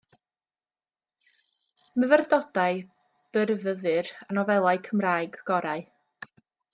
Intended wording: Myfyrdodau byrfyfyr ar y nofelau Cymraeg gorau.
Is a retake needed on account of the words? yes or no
yes